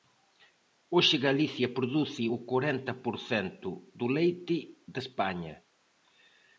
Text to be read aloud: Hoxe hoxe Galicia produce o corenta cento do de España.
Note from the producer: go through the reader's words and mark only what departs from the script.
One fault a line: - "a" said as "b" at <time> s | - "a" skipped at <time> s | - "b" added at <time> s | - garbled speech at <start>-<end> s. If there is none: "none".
- "hoxe" skipped at 1.1 s
- "por" added at 3.0 s
- "leite" added at 4.2 s